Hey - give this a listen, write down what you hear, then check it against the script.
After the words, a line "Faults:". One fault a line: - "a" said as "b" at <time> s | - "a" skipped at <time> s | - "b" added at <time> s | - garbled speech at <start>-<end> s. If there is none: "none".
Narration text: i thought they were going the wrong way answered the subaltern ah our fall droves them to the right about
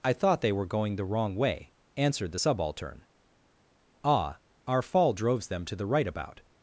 i thought they were going the wrong way answered the subaltern ah our fall droves them to the right about
Faults:
none